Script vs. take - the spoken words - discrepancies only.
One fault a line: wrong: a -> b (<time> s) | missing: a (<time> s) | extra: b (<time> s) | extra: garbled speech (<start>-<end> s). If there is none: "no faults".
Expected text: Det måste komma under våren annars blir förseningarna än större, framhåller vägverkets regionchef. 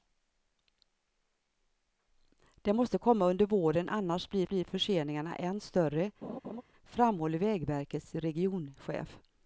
extra: blir (4.5 s)